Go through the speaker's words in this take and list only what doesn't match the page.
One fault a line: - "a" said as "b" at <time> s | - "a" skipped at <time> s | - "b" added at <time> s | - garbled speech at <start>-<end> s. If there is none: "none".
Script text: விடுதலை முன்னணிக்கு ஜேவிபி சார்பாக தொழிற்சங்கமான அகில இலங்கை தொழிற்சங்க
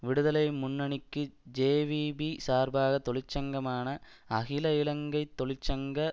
none